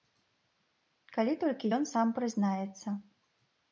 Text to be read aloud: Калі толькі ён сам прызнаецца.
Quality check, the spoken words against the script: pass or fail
pass